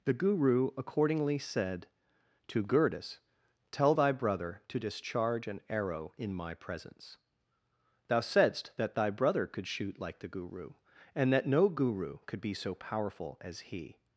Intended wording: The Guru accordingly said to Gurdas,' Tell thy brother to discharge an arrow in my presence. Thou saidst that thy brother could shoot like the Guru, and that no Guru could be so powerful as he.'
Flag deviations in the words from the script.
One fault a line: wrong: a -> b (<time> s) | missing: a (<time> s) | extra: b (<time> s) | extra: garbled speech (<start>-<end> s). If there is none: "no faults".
no faults